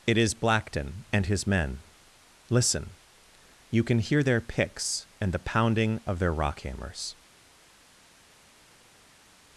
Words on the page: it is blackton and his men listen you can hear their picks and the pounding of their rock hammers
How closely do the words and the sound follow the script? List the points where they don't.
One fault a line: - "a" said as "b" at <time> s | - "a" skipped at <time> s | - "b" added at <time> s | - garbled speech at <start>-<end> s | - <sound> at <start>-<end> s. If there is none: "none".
none